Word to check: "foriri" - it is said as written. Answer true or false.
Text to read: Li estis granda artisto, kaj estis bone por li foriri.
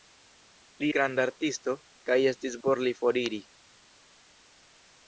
true